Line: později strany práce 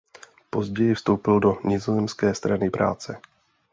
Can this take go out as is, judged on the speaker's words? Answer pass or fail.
fail